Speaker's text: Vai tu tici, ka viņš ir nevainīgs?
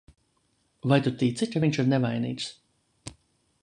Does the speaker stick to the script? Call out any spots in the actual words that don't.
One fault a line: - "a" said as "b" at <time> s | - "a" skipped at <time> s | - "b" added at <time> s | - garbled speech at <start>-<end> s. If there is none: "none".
none